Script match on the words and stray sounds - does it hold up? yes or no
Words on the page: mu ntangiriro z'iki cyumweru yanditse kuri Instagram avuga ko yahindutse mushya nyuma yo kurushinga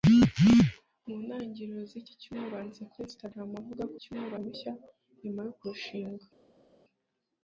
no